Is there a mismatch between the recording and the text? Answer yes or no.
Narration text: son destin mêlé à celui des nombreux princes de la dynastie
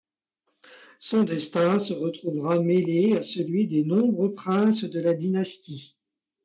yes